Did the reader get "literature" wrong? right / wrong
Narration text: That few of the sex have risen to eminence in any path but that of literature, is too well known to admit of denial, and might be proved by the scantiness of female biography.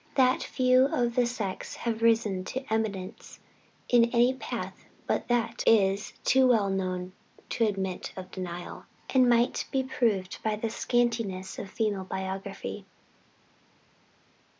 wrong